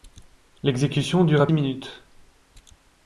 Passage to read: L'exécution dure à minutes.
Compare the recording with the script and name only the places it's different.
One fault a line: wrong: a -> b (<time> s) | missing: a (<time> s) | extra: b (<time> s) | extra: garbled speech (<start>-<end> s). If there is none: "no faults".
no faults